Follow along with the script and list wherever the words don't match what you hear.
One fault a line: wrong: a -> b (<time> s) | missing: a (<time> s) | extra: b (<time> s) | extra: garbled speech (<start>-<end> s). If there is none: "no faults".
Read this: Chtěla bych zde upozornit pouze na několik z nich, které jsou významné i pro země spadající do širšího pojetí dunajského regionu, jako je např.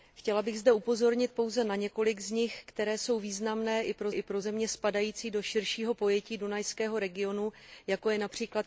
extra: i pro (4.1 s)